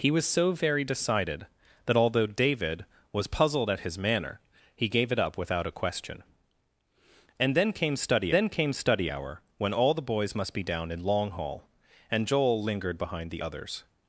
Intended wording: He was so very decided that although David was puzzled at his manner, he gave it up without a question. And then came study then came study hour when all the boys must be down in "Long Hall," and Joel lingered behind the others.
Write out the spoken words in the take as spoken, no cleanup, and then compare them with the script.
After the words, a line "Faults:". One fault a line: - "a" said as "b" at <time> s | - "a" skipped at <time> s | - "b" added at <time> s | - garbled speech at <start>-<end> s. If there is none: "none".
He was so very decided that although David was puzzled at his manner, he gave it up without a question. And then came study then came study hour when all the boys must be down in "Long Hall," and Joel lingered behind the others.
Faults:
none